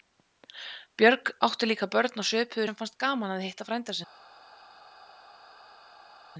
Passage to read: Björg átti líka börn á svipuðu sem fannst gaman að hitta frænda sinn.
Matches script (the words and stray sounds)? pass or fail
pass